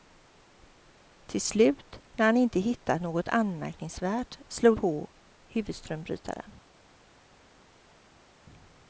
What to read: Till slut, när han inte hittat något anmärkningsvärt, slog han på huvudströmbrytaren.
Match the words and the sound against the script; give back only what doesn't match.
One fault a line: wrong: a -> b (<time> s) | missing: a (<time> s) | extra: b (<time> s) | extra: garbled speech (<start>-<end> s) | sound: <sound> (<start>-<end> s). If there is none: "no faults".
missing: han (4.8 s)